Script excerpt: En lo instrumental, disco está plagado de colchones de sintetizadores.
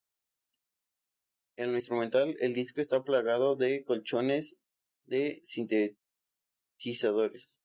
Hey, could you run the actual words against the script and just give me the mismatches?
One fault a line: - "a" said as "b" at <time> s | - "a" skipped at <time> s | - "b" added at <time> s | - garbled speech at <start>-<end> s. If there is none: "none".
- "el" added at 2.4 s